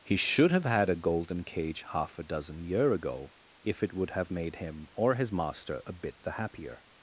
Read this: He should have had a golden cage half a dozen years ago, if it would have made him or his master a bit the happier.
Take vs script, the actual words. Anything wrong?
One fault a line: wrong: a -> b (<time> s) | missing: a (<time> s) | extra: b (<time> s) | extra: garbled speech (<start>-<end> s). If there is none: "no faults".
wrong: years -> year (2.6 s)